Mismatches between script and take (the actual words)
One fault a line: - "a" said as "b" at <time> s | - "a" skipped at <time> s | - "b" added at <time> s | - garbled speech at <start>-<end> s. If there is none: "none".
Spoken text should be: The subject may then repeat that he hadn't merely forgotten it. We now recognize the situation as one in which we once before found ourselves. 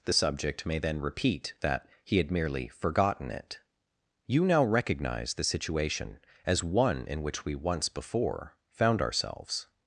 - "hadn't" said as "had" at 2.2 s
- "We" said as "You" at 4.3 s